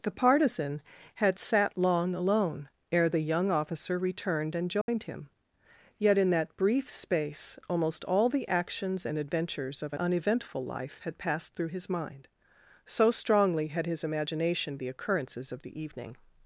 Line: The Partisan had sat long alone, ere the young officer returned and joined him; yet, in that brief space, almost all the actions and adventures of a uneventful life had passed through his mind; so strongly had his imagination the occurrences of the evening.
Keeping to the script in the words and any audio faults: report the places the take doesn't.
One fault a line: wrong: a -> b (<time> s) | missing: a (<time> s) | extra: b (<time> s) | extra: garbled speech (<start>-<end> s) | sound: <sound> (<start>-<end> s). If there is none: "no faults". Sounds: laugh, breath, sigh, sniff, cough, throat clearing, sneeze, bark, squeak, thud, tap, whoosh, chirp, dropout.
sound: dropout (4.8-4.9 s)